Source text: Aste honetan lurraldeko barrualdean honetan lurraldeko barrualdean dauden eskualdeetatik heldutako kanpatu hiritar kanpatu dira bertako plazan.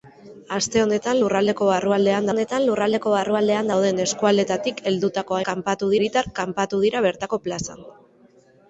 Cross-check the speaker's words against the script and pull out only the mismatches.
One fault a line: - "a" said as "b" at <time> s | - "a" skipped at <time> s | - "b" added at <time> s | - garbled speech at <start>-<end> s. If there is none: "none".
none